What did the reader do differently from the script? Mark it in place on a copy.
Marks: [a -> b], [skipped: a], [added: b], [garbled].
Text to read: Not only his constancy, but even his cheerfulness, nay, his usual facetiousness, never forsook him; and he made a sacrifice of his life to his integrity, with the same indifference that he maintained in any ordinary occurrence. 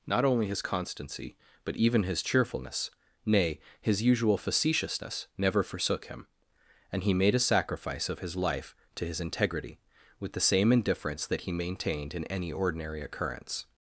Not only his constancy, but even his cheerfulness, nay, his usual facetiousness, never forsook him; and he made a sacrifice of his life to his integrity, with the same indifference that he maintained in any ordinary occurrence.